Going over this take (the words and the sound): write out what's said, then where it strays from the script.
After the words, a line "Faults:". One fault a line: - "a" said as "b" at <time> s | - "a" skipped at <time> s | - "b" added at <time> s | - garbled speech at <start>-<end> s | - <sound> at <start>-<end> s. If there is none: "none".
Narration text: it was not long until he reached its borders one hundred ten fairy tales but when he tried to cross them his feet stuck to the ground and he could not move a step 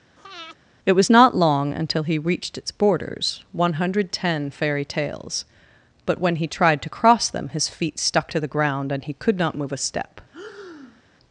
it was not long until he reached its borders one hundred ten fairy tales but when he tried to cross them his feet stuck to the ground and he could not move a step
Faults:
- breath at 0.2-0.6 s
- breath at 10.3-11.0 s